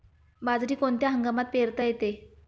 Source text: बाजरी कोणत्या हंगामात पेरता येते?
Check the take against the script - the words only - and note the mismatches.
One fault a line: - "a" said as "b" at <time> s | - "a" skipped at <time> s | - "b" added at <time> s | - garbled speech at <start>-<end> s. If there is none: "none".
none